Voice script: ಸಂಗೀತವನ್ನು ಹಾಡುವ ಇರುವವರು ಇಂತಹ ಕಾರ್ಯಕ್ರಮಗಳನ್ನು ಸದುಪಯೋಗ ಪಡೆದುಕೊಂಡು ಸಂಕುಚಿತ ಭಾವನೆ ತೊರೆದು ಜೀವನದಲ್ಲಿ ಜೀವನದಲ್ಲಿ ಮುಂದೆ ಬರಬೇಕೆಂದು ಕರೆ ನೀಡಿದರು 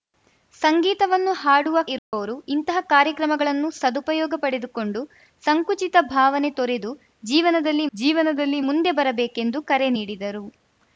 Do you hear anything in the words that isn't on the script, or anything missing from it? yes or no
no